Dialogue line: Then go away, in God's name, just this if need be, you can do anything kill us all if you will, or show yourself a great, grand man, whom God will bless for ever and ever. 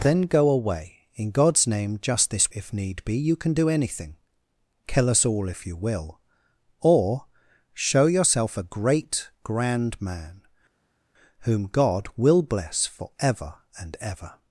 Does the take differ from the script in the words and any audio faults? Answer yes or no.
no